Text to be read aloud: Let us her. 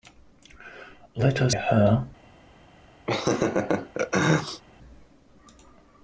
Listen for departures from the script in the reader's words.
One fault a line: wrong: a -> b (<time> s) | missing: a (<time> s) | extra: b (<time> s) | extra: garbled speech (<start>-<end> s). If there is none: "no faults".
no faults